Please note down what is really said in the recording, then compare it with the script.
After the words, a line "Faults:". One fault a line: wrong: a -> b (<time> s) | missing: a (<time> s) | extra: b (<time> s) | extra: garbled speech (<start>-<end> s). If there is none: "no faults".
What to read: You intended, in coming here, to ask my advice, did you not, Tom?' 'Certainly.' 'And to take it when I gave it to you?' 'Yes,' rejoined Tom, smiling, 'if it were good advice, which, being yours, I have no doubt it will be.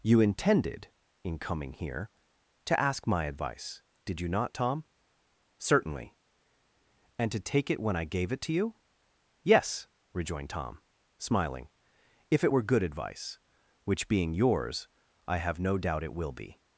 You intended, in coming here, to ask my advice, did you not, Tom?' 'Certainly.' 'And to take it when I gave it to you?' 'Yes,' rejoined Tom, smiling, 'if it were good advice, which, being yours, I have no doubt it will be.
Faults:
no faults